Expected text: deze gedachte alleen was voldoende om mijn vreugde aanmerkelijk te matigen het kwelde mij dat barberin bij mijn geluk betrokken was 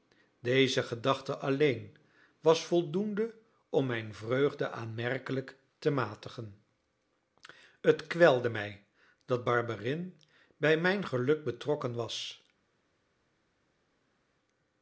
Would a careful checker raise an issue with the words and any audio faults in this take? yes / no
no